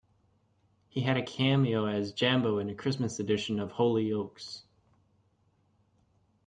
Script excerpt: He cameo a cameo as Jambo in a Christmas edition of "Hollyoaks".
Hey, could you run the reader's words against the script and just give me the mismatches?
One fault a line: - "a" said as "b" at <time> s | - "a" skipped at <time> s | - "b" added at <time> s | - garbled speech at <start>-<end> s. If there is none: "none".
- "cameo" said as "had" at 1.0 s